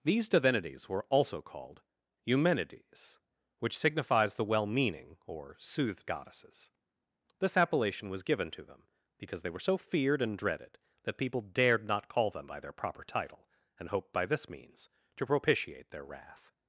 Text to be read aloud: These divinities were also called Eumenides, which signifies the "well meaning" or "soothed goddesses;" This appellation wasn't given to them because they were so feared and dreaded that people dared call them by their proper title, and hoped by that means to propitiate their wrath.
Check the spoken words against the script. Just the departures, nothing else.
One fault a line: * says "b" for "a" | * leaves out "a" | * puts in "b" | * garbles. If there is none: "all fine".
* says "was" for "wasn't"
* puts in "not"
* says "this" for "that"